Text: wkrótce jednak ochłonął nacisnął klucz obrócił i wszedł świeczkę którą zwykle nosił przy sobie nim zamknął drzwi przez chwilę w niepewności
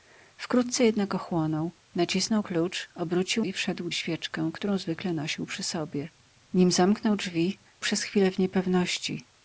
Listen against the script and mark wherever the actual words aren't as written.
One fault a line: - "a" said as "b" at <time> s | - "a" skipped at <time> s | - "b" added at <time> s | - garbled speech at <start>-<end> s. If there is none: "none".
none